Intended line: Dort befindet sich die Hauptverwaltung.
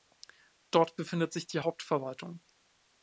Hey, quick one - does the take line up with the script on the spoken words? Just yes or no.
yes